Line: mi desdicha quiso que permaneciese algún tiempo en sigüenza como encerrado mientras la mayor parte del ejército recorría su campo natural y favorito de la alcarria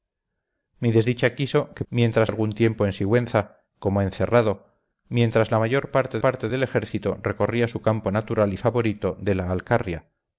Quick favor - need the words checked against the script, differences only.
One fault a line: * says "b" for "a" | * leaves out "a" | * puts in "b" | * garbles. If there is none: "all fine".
* says "mientras" for "permaneciese"
* puts in "parte"